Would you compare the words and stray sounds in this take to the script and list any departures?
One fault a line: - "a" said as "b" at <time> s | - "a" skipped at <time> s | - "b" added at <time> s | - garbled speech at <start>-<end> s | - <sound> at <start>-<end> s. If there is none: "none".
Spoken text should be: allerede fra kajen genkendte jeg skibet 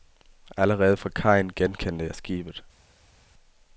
none